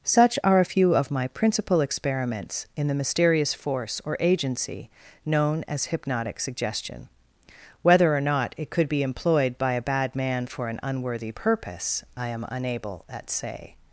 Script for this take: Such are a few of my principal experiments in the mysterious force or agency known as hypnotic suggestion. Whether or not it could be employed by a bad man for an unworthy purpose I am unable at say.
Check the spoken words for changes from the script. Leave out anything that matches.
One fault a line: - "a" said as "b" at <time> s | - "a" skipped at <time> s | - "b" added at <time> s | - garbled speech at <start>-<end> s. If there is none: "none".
none